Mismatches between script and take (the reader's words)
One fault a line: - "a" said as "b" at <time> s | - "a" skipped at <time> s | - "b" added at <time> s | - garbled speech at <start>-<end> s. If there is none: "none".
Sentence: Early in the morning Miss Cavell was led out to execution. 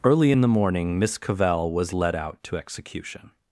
none